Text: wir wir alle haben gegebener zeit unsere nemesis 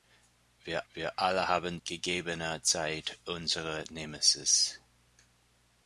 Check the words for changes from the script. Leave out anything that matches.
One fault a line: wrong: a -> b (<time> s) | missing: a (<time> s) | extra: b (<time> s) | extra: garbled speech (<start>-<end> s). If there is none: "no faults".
no faults